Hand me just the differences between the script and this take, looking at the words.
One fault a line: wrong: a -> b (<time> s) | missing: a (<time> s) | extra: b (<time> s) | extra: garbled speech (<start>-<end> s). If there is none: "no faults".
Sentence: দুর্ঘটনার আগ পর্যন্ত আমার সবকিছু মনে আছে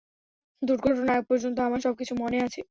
no faults